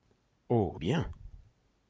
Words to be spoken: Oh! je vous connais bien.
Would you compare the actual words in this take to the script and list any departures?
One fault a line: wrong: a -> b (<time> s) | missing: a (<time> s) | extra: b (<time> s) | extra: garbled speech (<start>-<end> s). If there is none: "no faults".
missing: je vous connais (0.8 s)